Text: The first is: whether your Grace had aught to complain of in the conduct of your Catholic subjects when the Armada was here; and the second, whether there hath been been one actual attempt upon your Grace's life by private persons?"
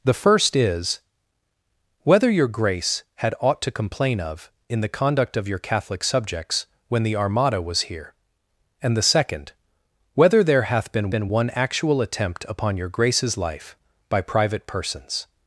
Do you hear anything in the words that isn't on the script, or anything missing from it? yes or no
no